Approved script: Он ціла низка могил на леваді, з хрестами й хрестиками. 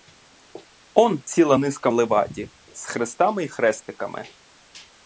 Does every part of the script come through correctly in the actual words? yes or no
no